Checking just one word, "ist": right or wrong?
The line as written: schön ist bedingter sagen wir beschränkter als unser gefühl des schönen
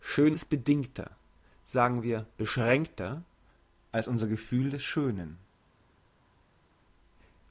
right